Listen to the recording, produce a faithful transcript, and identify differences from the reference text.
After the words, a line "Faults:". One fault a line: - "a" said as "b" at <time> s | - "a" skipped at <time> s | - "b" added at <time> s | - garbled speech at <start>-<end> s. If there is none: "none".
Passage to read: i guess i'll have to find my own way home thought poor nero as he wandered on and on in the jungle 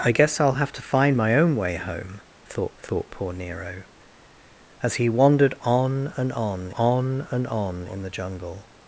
i guess i'll have to find my own way home thought thought poor nero as he wandered on and on on and on in the jungle
Faults:
- "thought" added at 2.8 s
- "on and on" added at 6.7 s